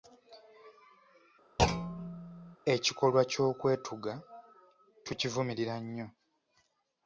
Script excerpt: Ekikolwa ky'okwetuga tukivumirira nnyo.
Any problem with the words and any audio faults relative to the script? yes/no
yes